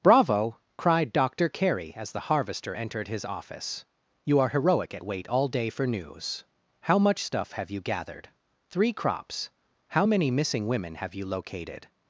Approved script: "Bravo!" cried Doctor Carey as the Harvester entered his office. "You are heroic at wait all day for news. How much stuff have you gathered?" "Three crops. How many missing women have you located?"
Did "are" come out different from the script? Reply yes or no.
no